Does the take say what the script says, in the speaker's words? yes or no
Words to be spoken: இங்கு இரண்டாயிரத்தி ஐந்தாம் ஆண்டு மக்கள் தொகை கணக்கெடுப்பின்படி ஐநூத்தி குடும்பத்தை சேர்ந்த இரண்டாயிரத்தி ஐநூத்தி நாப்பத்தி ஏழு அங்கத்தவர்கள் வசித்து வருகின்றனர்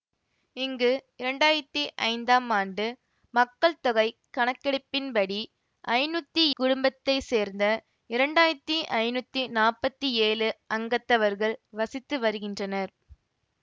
yes